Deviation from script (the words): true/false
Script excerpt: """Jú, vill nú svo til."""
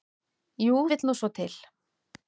false